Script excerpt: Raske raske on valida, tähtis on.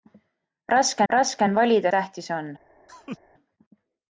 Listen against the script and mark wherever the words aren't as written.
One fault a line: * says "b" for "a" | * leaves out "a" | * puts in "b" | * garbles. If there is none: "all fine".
all fine